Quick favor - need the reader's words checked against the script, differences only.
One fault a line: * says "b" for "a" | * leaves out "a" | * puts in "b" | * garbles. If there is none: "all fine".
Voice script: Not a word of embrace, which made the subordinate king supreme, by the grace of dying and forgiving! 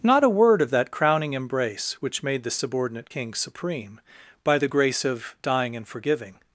* puts in "that crowning"